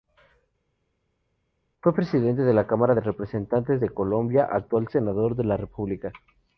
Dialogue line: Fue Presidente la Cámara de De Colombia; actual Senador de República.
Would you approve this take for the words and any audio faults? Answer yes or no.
no